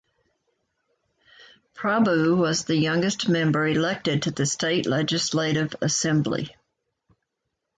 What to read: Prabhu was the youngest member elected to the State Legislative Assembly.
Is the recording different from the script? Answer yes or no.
no